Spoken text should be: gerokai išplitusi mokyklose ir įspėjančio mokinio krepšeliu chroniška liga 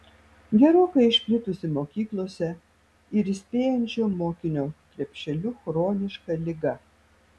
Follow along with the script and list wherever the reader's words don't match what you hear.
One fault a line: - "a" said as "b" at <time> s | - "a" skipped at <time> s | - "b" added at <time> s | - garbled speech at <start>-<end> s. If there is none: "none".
none